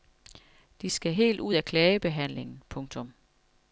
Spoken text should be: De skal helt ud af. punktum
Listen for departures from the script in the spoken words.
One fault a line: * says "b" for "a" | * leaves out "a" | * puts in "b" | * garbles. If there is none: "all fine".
* puts in "klagebehandlingen"